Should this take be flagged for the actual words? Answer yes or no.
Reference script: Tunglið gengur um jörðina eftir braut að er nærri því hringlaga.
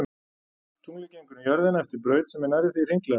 yes